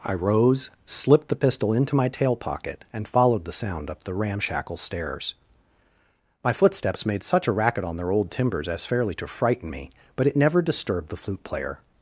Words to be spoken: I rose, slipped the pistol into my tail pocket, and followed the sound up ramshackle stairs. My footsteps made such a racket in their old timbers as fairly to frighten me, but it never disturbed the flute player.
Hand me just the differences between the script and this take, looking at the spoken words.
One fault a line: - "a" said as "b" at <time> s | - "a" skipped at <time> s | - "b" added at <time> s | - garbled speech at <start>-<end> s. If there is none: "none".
- "the" added at 4.0 s
- "in" said as "on" at 7.8 s